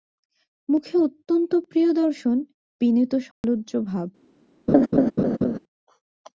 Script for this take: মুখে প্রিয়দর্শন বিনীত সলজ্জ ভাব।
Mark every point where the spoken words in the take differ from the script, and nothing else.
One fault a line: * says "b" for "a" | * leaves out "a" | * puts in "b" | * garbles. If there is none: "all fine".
* puts in "অত্যন্ত"